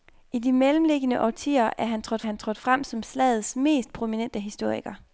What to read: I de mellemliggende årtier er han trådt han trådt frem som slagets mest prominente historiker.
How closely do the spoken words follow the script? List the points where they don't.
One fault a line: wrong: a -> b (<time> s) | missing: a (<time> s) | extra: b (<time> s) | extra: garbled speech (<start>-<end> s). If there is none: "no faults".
no faults